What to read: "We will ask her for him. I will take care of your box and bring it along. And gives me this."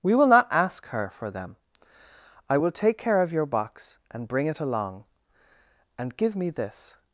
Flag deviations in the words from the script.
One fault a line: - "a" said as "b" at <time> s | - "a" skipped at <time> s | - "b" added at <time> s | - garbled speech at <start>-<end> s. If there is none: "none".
- "not" added at 0.3 s
- "him" said as "them" at 1.3 s
- "gives" said as "give" at 6.2 s